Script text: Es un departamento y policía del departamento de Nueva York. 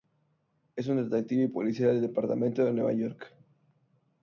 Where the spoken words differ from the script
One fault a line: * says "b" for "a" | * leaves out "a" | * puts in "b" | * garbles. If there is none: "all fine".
* says "detective" for "departamento"